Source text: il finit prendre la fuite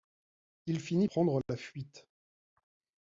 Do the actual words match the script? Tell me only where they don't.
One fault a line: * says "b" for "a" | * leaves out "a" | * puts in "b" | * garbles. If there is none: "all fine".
all fine